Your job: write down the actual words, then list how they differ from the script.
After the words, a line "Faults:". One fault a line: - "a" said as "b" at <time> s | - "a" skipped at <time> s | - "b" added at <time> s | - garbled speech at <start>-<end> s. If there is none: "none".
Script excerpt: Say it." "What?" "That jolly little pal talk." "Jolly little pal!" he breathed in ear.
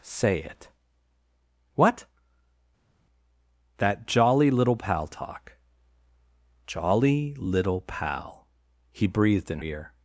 Say it." "What?" "That jolly little pal talk." "Jolly little pal!" he breathed in ear.
Faults:
none